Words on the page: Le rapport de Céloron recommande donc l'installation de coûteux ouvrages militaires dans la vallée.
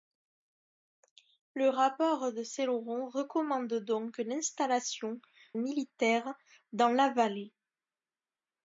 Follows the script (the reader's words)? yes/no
no